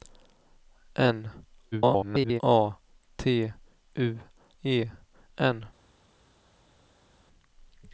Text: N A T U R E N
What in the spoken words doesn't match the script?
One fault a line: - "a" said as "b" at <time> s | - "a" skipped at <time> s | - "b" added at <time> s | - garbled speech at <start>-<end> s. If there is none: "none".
- garbled speech at 1.7-2.4 s
- "R" skipped at 4.2 s